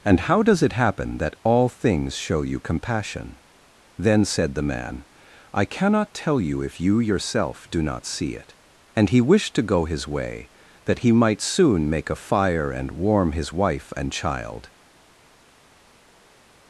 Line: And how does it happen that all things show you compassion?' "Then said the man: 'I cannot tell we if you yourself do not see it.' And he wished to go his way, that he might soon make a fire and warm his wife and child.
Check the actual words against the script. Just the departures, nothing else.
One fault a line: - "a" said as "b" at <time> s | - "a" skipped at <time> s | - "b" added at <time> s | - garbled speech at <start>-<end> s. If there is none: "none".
- "we" said as "you" at 6.4 s